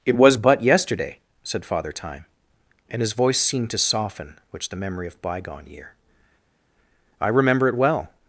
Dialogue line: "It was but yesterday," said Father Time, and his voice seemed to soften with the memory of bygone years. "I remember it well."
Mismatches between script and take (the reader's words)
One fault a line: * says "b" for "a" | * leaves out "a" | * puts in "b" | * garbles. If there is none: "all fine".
* says "which" for "with"
* says "year" for "years"